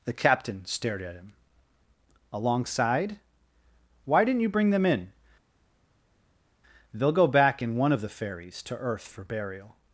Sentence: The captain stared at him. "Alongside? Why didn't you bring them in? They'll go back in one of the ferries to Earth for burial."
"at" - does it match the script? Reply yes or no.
yes